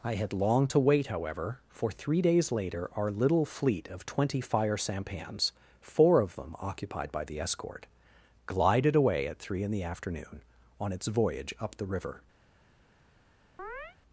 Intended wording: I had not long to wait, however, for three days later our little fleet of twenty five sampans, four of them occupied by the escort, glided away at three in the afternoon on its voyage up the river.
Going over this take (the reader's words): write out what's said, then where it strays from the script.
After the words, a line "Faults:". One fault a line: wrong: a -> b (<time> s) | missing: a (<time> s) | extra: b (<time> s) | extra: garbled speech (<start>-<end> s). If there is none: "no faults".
I had long to wait, however, for three days later our little fleet of twenty fire sampans, four of them occupied by the escort, glided away at three in the afternoon on its voyage up the river.
Faults:
missing: not (0.3 s)
wrong: five -> fire (4.4 s)